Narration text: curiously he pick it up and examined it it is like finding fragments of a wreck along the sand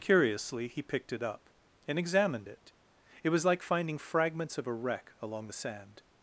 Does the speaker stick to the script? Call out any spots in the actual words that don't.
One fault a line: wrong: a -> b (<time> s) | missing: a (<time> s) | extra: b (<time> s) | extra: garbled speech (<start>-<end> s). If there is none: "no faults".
wrong: pick -> picked (0.8 s)
wrong: is -> was (3.3 s)